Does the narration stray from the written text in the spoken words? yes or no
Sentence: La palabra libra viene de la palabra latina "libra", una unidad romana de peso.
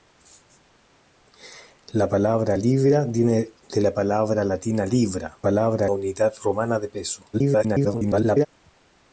yes